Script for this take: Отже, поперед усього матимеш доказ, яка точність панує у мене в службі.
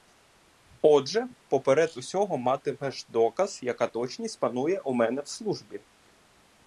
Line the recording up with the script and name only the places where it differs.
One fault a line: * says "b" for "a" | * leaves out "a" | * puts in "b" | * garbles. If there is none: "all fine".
all fine